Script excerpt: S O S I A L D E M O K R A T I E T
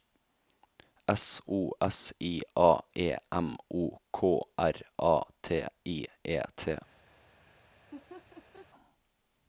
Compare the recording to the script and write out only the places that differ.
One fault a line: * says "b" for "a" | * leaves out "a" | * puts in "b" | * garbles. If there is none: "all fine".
* leaves out "L D"